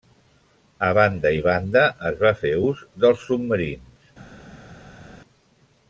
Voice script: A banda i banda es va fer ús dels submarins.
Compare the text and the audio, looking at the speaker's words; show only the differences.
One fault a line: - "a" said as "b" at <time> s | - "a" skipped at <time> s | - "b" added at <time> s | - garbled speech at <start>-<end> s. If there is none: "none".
none